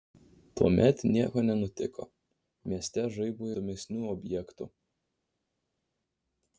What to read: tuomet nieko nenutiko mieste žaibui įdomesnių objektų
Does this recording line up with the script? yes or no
yes